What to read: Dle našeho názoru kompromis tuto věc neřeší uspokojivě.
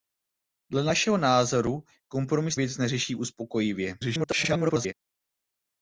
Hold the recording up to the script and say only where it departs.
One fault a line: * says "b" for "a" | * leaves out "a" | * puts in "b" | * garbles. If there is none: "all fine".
* leaves out "tuto"
* garbles